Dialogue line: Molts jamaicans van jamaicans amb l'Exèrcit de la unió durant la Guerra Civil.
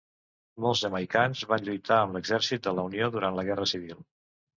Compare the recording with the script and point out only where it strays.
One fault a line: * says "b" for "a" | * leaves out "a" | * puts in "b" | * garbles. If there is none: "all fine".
* says "lluitar" for "jamaicans"